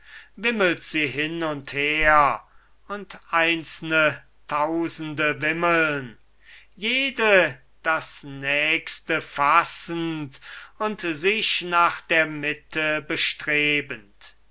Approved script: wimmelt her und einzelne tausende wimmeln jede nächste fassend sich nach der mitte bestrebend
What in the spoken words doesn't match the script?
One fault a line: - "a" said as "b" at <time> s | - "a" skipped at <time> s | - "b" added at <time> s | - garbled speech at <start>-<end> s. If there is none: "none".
- "sie hin und" added at 0.8 s
- "das" added at 7.8 s
- "und" added at 10.8 s